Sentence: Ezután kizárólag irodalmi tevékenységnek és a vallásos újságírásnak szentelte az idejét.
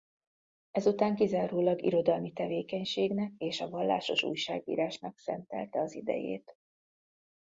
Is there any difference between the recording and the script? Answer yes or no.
no